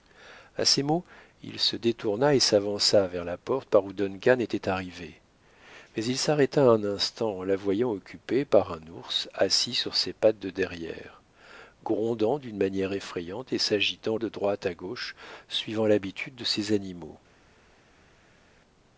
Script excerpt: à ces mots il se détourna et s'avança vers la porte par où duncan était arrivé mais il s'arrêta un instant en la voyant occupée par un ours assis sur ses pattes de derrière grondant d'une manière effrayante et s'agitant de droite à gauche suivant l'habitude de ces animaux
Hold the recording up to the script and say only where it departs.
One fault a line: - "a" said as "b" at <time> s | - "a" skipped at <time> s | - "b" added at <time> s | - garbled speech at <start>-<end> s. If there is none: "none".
none